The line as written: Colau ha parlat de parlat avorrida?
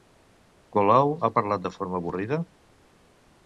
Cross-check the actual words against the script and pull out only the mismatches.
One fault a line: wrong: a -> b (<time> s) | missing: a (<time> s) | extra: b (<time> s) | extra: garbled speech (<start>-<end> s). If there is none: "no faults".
wrong: parlat -> forma (1.8 s)